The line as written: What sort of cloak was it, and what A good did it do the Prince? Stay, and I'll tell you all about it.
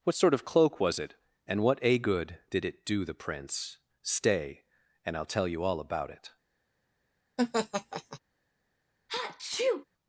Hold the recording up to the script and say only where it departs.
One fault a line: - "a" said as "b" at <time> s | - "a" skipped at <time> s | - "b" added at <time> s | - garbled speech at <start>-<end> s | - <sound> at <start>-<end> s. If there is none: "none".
- laugh at 7.4-8.2 s
- sneeze at 9.1-9.9 s